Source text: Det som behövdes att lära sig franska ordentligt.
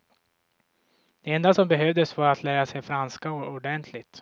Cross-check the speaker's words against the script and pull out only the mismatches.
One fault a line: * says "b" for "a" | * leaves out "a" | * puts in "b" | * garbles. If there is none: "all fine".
* puts in "enda"
* puts in "var"